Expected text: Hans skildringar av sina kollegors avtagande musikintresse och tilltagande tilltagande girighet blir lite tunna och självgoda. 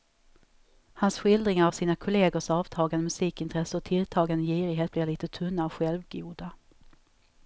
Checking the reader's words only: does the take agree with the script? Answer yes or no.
no